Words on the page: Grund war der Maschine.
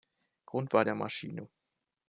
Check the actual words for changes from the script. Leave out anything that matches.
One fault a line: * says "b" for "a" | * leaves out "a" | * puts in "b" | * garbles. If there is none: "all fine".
all fine